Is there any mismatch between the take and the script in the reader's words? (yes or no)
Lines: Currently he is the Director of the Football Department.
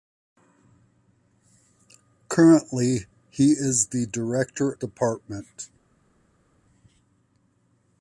yes